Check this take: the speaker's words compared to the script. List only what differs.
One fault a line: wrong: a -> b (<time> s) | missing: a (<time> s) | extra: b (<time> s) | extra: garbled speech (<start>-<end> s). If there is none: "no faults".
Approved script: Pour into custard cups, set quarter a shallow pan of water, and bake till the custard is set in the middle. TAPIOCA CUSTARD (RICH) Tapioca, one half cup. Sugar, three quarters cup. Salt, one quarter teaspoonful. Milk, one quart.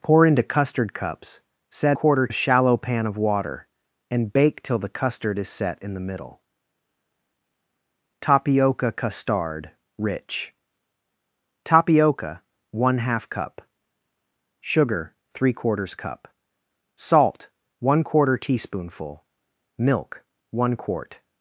no faults